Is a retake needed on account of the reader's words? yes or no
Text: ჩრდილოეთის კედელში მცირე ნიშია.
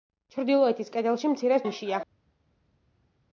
no